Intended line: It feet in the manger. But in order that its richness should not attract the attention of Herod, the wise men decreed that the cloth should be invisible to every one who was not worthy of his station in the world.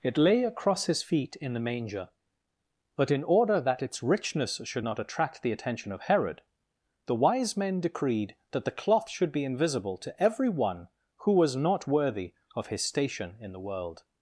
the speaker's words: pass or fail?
fail